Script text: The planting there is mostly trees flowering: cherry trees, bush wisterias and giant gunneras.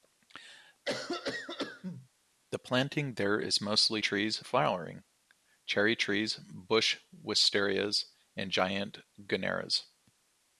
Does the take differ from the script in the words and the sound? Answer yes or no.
yes